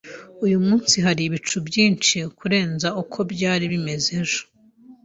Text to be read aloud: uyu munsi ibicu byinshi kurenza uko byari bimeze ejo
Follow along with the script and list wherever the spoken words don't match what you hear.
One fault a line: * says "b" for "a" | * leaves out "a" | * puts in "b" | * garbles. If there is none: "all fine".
* puts in "hari"